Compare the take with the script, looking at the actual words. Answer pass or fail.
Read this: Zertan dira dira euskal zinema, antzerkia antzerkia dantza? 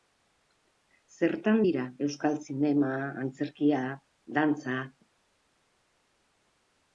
fail